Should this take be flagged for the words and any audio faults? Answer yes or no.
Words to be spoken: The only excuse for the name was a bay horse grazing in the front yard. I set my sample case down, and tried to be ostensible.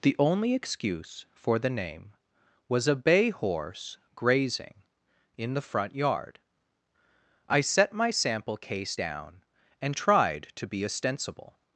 no